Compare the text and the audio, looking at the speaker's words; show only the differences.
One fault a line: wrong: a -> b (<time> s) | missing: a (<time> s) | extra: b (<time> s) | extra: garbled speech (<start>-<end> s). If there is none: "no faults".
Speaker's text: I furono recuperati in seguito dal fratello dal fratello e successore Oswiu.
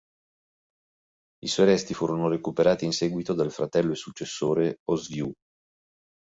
extra: suoi resti (1.5 s)
missing: dal fratello (3.9 s)